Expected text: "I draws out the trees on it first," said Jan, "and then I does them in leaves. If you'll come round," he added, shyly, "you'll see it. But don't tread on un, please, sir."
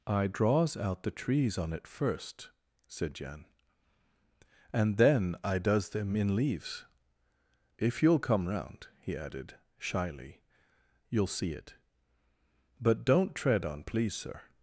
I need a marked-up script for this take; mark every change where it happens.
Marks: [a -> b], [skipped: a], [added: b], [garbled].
"I draws out the trees on it first," said Jan, "and then I does them in leaves. If you'll come round," he added, shyly, "you'll see it. But don't tread on [skipped: un,] please, sir."